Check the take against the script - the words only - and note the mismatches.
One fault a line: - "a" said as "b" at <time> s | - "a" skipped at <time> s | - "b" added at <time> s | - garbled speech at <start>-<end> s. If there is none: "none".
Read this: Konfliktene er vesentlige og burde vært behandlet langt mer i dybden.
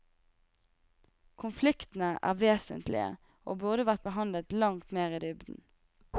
none